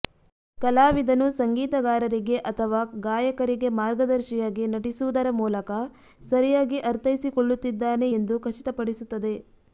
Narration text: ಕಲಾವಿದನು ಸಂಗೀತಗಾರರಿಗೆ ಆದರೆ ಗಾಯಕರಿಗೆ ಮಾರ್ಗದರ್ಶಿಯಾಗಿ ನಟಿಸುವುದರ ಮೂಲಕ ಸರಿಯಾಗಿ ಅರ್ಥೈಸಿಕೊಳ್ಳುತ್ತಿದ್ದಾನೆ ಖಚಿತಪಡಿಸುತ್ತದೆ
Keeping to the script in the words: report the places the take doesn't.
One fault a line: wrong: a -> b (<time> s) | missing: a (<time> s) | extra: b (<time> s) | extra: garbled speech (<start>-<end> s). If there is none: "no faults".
wrong: ಆದರೆ -> ಅಥವಾ (2.5 s)
extra: ಎಂದು (8.1 s)